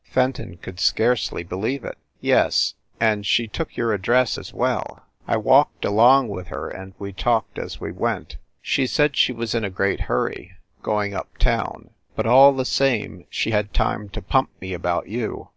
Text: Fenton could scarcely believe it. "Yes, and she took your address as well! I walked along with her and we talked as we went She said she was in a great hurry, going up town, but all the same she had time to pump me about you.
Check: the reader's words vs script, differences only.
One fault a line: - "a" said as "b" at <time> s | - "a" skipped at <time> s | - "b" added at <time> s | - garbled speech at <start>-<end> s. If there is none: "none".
none